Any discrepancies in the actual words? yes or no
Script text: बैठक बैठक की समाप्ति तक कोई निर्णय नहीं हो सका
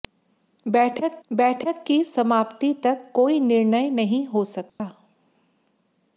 no